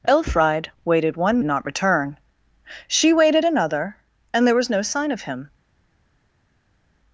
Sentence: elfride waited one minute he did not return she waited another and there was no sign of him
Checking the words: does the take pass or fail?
fail